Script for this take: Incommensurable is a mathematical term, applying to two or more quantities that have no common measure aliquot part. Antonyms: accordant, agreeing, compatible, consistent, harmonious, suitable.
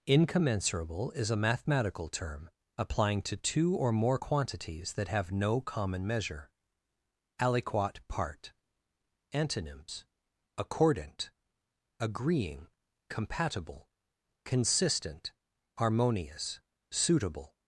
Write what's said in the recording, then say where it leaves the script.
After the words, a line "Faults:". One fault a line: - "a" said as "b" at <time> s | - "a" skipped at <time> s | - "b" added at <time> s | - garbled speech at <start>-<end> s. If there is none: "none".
Incommensurable is a mathematical term, applying to two or more quantities that have no common measure aliquot part. Antonyms: accordant, agreeing, compatible, consistent, harmonious, suitable.
Faults:
none